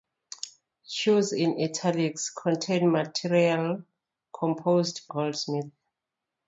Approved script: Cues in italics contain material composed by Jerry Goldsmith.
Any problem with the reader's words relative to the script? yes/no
yes